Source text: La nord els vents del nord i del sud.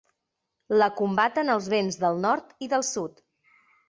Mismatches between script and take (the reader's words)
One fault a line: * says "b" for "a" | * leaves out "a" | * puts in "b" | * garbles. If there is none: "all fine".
* says "combaten" for "nord"